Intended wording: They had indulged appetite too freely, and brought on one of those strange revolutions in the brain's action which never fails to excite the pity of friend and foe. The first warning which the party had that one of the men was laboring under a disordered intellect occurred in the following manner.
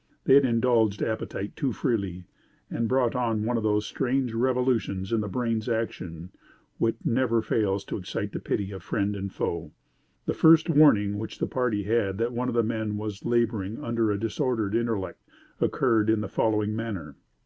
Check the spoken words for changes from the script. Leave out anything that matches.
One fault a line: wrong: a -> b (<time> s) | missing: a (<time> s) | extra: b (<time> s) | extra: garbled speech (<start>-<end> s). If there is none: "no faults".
no faults